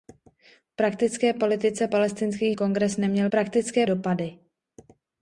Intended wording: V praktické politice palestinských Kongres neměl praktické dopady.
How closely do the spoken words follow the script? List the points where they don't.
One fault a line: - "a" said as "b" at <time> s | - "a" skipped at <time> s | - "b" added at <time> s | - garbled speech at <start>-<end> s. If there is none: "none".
none